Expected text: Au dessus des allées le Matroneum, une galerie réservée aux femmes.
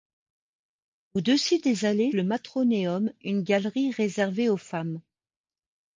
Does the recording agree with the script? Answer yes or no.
yes